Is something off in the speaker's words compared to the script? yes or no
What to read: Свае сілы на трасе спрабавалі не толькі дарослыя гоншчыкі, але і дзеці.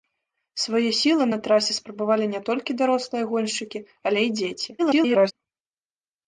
yes